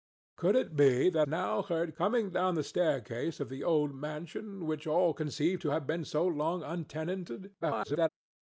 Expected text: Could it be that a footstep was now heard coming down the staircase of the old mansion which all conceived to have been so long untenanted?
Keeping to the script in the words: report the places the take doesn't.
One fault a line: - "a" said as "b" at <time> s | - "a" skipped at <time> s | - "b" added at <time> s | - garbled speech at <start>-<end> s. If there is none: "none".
- "a footstep was" skipped at 1.3 s
- garbled speech at 7.6-8.1 s